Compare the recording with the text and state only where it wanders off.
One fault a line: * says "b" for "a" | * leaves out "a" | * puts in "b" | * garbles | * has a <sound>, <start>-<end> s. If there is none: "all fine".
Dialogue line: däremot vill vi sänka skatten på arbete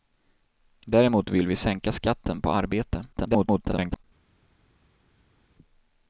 * garbles